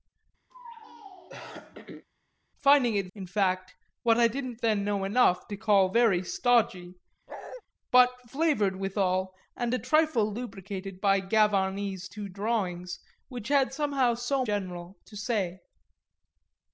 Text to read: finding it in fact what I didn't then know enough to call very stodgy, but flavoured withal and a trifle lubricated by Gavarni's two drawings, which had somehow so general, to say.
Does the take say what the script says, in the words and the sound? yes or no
no